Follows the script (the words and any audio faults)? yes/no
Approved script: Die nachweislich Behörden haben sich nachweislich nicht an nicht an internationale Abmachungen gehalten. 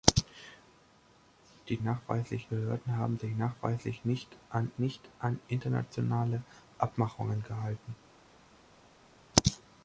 yes